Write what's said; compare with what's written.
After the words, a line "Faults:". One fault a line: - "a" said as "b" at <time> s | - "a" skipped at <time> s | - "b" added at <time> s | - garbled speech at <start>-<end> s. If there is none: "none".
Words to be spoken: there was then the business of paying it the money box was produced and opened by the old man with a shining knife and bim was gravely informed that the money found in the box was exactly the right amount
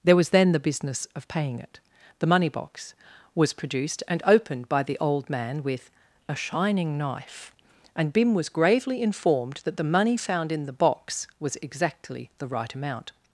there was then the business of paying it the money box was produced and opened by the old man with a shining knife and bim was gravely informed that the money found in the box was exactly the right amount
Faults:
none